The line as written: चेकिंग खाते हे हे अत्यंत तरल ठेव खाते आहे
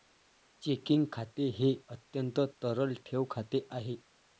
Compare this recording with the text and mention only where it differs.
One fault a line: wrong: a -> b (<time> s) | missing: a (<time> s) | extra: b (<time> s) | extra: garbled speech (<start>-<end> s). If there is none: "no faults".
missing: हे (1.7 s)